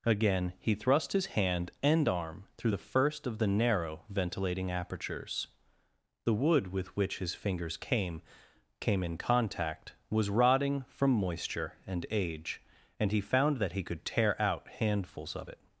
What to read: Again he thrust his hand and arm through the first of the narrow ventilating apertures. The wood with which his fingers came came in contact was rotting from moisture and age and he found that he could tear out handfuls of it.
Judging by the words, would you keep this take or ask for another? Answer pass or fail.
pass